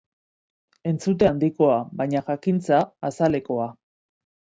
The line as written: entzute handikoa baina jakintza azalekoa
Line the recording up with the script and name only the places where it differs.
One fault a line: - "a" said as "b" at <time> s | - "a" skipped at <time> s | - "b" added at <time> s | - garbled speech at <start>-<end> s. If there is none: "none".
none